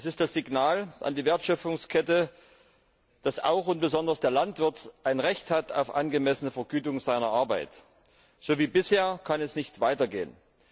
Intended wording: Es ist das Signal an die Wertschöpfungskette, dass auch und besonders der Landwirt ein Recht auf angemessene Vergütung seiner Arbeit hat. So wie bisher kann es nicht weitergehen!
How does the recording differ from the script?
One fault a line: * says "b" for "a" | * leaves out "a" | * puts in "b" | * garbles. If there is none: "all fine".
all fine